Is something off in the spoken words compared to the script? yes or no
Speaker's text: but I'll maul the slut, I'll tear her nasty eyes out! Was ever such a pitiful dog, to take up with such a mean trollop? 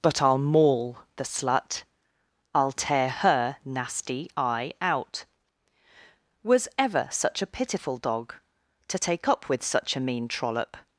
yes